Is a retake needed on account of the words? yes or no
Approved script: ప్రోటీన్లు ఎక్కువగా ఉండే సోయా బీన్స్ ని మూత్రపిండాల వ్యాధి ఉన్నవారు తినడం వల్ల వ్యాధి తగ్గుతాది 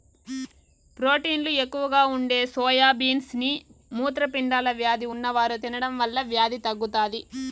no